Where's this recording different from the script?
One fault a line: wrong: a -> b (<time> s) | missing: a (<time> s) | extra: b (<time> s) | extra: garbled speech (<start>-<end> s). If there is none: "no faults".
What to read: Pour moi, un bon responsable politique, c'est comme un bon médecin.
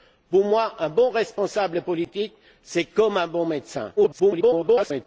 extra: garbled speech (4.0-5.1 s)